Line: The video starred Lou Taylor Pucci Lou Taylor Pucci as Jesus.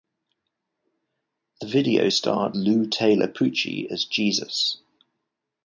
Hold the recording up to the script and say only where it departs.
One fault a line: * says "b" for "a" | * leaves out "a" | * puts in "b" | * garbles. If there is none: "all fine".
* leaves out "Lou Taylor Pucci"